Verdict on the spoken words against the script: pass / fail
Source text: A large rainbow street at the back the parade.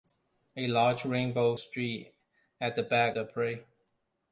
pass